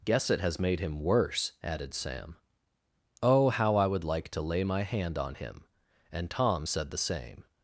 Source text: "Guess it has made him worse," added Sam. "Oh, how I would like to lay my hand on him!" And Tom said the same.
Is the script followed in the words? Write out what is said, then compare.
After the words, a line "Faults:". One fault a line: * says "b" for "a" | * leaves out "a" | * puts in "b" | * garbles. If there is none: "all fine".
"Guess it has made him worse," added Sam. "Oh, how I would like to lay my hand on him!" And Tom said the same.
Faults:
all fine